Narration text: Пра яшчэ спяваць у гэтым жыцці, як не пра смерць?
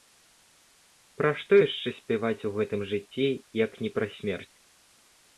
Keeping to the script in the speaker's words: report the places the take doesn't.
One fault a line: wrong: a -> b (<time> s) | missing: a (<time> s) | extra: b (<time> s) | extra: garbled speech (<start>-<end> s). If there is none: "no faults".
extra: што (1.4 s)